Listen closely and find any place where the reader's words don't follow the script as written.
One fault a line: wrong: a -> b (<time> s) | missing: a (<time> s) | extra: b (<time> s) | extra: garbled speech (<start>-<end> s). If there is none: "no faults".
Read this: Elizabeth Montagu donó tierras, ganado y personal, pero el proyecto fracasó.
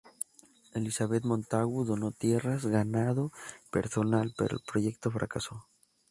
missing: y (3.3 s)